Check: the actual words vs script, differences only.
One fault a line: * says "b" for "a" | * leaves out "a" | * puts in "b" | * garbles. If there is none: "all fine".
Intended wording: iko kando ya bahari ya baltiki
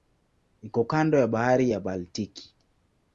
all fine